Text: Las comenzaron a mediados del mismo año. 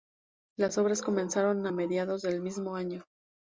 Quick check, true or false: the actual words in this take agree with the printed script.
false